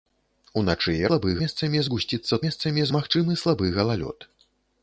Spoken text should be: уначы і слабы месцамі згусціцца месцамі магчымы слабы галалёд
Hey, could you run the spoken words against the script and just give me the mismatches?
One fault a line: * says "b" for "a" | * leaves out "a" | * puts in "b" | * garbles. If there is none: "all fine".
all fine